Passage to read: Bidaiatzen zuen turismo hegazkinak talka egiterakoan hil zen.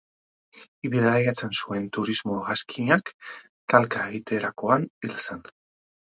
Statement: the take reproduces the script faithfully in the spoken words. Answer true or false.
true